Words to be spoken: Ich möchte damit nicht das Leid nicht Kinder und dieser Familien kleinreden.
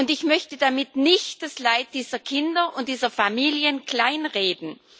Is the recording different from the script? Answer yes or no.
yes